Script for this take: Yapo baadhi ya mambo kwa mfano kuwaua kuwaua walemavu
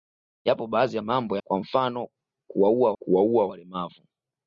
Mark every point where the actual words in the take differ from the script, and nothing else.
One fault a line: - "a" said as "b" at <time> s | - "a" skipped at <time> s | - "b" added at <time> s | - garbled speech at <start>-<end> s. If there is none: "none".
none